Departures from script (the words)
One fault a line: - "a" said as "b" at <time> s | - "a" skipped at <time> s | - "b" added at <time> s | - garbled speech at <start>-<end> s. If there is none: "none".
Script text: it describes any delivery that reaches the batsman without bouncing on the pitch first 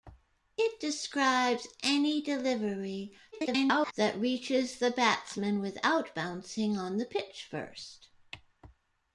- garbled speech at 3.3-3.9 s